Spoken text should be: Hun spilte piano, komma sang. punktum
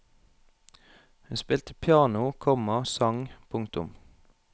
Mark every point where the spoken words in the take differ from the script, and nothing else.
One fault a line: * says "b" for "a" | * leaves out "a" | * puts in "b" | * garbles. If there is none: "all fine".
all fine